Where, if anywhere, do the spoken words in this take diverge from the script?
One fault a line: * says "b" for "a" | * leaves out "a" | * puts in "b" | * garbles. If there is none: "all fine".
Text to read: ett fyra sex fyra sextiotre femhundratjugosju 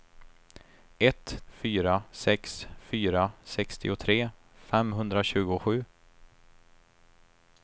all fine